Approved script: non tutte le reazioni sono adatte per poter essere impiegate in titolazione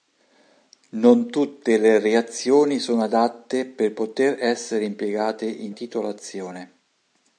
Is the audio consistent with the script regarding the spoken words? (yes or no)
yes